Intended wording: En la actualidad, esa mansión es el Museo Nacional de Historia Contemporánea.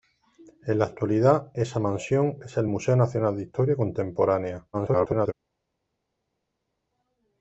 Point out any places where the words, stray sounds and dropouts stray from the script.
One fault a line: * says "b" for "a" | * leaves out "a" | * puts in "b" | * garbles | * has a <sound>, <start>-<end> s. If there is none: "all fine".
* garbles